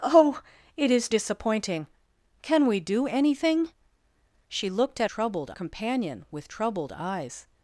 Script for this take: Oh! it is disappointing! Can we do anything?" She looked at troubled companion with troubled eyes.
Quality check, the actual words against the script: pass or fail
pass